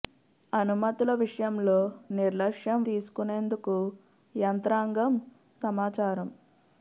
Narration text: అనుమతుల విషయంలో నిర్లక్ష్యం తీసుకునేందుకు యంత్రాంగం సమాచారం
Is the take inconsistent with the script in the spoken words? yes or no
no